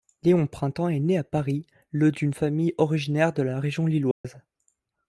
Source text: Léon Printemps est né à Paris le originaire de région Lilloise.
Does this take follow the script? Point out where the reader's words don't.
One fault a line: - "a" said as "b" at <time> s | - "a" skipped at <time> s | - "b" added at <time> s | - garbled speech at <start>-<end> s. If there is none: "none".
- "d'une famille" added at 2.1 s
- "la" added at 3.4 s